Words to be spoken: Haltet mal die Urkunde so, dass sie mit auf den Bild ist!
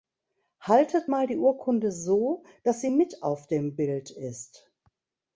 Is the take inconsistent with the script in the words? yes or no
yes